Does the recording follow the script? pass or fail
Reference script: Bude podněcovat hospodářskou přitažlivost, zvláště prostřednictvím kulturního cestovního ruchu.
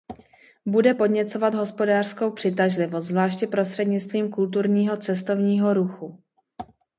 pass